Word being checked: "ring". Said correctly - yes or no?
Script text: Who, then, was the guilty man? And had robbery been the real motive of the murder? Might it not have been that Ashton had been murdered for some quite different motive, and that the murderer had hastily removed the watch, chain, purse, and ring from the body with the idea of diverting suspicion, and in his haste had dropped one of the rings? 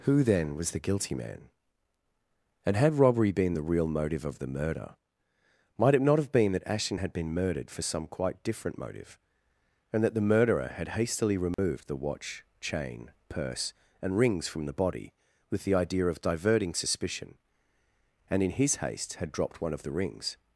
no